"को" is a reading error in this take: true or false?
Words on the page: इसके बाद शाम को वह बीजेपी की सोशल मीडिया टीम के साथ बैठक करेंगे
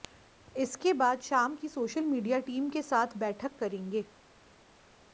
true